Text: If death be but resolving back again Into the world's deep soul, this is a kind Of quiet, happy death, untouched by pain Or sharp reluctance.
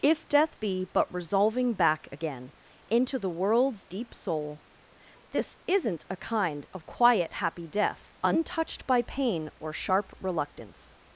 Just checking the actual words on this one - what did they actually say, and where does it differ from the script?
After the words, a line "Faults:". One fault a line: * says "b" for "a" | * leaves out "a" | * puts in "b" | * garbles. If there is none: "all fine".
If death be but resolving back again Into the world's deep soul, this isn't a kind Of quiet, happy death, untouched by pain Or sharp reluctance.
Faults:
* says "isn't" for "is"